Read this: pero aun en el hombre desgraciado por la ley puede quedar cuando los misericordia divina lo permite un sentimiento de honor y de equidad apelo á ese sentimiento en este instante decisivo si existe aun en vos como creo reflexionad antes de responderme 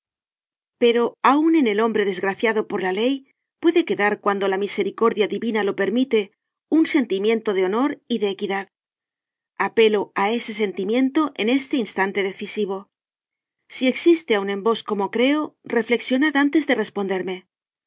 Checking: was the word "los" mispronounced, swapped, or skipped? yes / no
yes